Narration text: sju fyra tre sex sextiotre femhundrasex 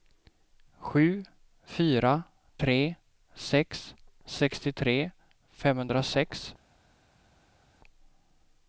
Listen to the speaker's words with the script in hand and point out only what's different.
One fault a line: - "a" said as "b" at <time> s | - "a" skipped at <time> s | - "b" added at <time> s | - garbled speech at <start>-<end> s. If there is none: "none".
none